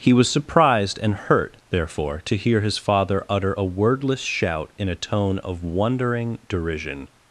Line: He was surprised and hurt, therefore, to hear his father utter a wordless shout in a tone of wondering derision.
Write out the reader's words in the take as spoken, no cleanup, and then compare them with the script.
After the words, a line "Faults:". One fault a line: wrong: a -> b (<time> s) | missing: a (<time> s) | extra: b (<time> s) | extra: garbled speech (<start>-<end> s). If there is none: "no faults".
He was surprised and hurt, therefore, to hear his father utter a wordless shout in a tone of wondering derision.
Faults:
no faults